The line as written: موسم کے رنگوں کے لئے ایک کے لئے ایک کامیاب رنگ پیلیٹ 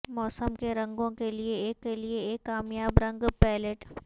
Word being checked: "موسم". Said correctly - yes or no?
yes